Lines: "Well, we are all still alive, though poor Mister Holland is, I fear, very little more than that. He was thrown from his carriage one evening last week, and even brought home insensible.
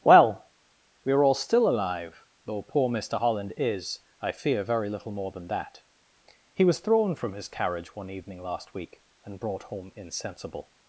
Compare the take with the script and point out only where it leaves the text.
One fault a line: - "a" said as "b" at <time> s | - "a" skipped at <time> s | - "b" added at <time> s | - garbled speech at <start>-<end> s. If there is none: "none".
- "even" skipped at 9.4 s